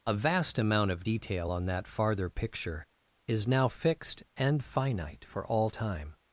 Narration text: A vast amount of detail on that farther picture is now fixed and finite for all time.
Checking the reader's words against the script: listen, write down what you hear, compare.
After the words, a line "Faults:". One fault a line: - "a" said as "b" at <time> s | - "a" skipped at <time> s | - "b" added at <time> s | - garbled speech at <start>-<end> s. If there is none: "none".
A vast amount of detail on that farther picture is now fixed and finite for all time.
Faults:
none